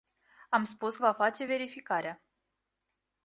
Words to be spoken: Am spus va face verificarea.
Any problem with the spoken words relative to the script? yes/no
no